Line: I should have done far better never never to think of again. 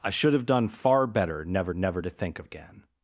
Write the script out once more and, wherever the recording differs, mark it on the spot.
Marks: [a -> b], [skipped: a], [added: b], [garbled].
I should have done far better never never to think of again.